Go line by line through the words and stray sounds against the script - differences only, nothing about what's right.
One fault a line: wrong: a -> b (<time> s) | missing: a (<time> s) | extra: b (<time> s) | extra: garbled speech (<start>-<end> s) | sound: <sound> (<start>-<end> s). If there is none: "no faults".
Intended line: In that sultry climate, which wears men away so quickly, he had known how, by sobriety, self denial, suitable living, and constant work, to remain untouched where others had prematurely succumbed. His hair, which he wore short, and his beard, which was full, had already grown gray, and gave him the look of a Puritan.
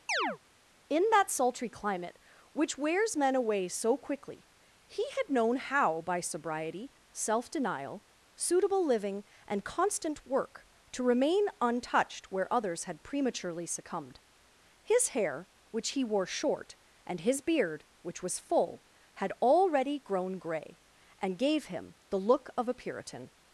sound: chirp (0.1-0.4 s)